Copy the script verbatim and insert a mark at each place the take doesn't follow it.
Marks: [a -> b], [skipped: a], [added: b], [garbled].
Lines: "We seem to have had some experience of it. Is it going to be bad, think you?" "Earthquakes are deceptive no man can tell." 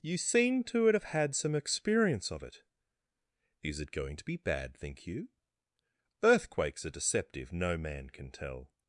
["We -> You] seem to have had some experience of it. Is it going to be bad, think you?" "Earthquakes are deceptive no man can tell."